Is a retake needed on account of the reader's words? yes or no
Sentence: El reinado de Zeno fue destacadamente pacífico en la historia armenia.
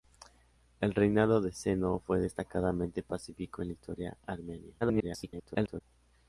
yes